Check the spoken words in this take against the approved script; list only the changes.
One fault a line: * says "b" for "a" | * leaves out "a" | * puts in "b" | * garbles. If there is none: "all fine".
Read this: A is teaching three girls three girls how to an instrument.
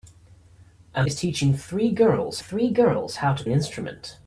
all fine